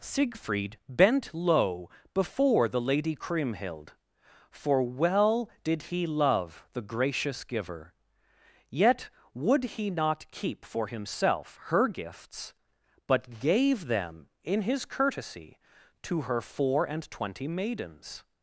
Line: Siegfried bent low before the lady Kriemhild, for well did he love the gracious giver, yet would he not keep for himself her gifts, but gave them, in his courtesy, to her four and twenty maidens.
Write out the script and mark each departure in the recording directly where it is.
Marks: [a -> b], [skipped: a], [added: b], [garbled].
Siegfried bent low before the lady Kriemhild, for well did he love the gracious giver, yet would he not keep for himself her gifts, but gave them, in his courtesy, to her four and twenty maidens.